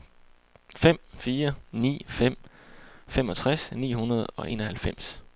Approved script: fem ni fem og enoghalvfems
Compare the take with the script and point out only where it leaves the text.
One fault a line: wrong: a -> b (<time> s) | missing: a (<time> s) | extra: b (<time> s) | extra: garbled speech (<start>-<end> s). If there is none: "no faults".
extra: fire (1.2 s)
extra: femogtres ni hundrede (3.1 s)